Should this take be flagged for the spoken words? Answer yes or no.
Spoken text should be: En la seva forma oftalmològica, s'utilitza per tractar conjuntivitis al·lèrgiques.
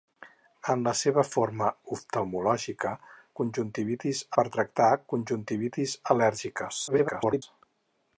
yes